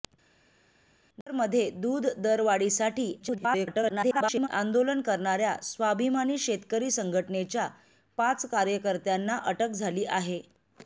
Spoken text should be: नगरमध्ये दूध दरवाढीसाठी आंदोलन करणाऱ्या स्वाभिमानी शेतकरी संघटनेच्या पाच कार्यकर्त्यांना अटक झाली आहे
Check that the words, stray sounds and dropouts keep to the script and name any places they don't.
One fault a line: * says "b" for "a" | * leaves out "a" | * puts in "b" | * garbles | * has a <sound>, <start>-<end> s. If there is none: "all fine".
* garbles